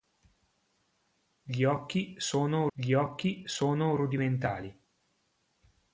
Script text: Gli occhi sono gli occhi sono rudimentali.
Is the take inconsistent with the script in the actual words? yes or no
no